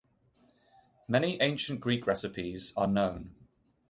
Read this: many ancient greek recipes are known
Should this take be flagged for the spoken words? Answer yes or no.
no